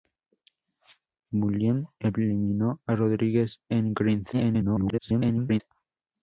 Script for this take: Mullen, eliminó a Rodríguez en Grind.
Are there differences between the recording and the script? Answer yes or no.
yes